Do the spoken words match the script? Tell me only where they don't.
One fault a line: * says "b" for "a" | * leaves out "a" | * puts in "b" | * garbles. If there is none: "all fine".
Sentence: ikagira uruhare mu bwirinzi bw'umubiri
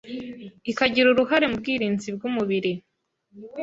all fine